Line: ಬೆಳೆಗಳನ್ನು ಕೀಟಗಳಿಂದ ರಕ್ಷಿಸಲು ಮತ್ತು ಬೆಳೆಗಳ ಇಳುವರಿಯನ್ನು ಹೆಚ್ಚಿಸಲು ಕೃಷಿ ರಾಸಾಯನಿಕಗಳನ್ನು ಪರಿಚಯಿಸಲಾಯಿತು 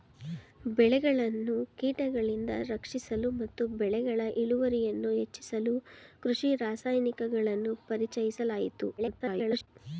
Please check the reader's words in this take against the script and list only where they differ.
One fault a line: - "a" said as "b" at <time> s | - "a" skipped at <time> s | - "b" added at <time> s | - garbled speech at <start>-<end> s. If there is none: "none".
- garbled speech at 9.0-9.7 s